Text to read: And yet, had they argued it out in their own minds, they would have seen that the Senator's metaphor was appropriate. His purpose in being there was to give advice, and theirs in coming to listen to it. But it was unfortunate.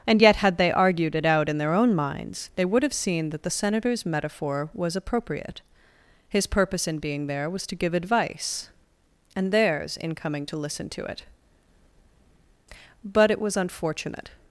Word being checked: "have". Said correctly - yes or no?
yes